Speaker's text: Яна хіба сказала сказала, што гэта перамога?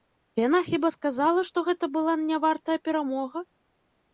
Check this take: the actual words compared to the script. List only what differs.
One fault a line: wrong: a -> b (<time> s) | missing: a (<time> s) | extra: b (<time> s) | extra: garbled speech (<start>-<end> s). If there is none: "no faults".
missing: сказала (1.4 s)
extra: была нявартая (2.0 s)